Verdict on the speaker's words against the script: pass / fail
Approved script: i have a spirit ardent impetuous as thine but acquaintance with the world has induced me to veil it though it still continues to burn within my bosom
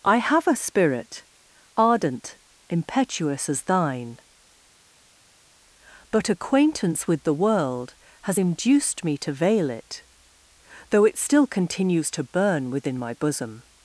pass